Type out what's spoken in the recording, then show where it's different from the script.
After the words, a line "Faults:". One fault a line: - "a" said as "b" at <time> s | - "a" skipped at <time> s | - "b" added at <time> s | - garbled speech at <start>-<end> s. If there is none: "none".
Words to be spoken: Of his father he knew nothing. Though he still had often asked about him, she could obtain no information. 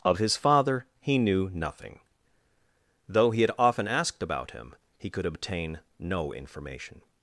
Of his father he knew nothing. Though he had often asked about him, he could obtain no information.
Faults:
- "still" skipped at 3.4 s
- "she" said as "he" at 5.0 s